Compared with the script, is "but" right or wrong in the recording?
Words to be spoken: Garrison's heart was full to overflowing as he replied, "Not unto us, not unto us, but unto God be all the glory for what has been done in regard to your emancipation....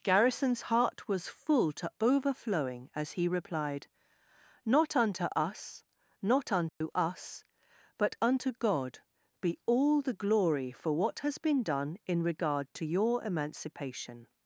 right